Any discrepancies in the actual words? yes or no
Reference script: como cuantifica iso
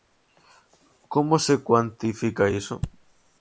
yes